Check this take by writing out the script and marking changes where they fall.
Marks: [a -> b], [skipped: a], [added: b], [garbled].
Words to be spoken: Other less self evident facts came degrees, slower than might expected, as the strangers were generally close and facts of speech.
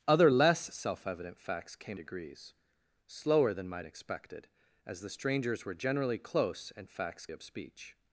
Other less self evident facts came degrees, slower than might expected, as the strangers were generally close and facts of speech.